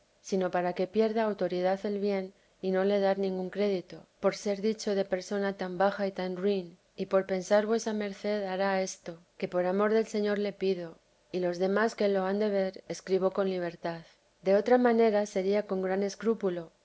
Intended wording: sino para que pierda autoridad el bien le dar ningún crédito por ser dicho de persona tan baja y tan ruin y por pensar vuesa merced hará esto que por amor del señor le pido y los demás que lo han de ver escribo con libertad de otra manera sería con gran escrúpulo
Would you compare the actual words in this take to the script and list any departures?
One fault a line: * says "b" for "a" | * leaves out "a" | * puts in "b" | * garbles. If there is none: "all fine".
* puts in "y no"